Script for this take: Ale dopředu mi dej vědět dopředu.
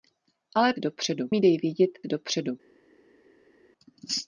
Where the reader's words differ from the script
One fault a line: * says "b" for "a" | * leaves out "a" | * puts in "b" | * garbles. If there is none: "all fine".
all fine